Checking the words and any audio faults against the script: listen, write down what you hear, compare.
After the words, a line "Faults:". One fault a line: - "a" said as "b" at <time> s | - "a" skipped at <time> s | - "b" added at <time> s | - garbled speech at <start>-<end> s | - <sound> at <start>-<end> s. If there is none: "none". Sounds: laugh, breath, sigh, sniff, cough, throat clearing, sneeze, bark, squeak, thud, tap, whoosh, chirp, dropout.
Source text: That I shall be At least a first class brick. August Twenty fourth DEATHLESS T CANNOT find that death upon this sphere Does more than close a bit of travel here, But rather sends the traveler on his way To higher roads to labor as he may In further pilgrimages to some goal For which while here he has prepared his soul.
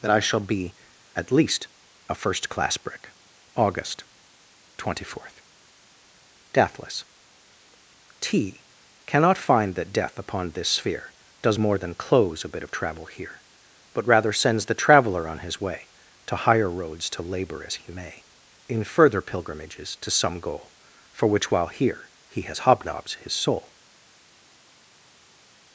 That I shall be At least a first class brick. August Twenty fourth DEATHLESS T CANNOT find that death upon this sphere Does more than close a bit of travel here, But rather sends the traveler on his way To higher roads to labor as he may In further pilgrimages to some goal For which while here he has hobnobs his soul.
Faults:
- "prepared" said as "hobnobs" at 22.6 s